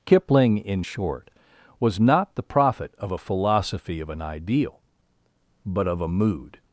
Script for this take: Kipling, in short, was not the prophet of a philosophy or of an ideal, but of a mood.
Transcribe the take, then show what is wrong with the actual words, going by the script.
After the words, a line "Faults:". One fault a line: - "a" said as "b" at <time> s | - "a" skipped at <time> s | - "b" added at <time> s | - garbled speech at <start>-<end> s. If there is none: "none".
Kipling, in short, was not the prophet of a philosophy of an ideal, but of a mood.
Faults:
- "or" skipped at 4.0 s